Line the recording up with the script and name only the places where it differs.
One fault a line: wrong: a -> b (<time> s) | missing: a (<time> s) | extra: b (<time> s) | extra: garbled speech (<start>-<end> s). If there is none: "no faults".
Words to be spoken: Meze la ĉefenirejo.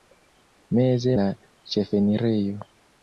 no faults